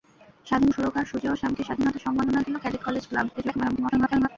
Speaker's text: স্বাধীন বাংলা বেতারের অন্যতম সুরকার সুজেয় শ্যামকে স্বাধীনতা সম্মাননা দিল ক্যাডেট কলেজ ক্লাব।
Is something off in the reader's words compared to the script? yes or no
yes